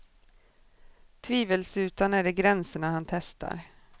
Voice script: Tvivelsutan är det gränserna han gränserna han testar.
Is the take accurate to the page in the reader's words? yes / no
no